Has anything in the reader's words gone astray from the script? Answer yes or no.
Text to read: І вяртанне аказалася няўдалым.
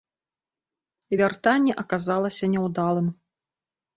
no